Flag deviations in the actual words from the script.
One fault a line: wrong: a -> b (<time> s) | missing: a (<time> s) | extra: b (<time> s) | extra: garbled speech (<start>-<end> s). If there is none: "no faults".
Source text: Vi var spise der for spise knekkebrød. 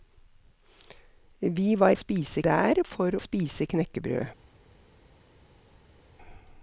no faults